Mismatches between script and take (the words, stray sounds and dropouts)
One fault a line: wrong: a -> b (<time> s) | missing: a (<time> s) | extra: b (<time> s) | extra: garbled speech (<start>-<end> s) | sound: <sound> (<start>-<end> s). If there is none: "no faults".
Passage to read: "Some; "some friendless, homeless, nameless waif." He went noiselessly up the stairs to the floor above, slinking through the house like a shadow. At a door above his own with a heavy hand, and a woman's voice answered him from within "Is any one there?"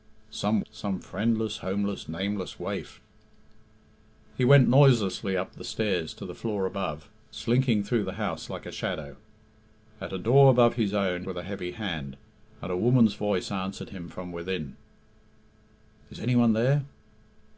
no faults